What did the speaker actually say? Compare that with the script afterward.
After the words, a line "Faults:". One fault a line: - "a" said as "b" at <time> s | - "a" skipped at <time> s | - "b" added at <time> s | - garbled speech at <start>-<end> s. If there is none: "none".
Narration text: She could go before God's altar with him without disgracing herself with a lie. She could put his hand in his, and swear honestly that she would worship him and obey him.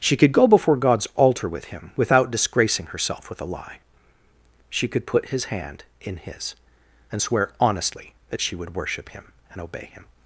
She could go before God's altar with him without disgracing herself with a lie. She could put his hand in his, and swear honestly that she would worship him and obey him.
Faults:
none